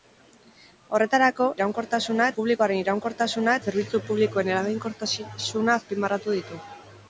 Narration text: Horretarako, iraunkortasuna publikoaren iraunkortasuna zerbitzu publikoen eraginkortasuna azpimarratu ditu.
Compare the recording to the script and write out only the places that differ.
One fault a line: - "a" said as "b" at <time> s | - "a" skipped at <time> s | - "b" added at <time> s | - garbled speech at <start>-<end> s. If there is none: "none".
none